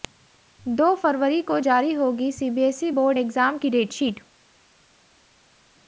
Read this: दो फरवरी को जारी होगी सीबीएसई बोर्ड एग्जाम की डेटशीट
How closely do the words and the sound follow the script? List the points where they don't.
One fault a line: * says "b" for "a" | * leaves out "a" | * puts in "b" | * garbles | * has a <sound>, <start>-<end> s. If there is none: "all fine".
all fine